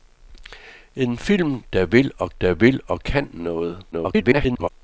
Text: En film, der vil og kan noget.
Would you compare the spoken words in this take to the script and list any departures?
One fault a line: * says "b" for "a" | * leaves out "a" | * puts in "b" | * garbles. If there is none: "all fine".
* puts in "der vil og"
* garbles